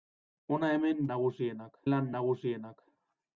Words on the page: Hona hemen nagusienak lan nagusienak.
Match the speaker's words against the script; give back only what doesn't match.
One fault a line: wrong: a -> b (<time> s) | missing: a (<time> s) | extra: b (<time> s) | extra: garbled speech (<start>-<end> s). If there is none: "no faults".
no faults